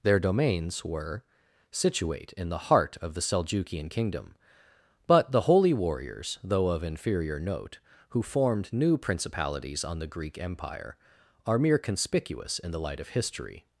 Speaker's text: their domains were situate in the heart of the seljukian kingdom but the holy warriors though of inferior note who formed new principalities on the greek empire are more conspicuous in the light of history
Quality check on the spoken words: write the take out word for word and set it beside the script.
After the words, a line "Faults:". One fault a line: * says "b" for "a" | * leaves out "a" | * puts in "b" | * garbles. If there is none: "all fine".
their domains were situate in the heart of the seljukian kingdom but the holy warriors though of inferior note who formed new principalities on the greek empire are mere conspicuous in the light of history
Faults:
* says "mere" for "more"